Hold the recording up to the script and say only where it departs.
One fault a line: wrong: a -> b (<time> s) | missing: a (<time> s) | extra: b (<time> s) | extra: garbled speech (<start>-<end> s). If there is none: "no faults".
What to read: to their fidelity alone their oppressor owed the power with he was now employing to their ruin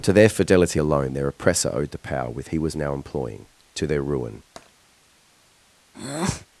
no faults